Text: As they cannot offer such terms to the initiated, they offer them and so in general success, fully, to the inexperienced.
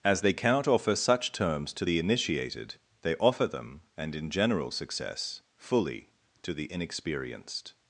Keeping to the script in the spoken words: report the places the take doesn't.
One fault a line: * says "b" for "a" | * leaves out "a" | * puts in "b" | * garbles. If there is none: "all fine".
* leaves out "so"